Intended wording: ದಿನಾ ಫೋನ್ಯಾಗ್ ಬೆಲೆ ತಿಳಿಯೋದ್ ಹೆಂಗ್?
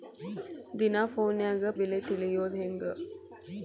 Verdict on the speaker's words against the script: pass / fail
pass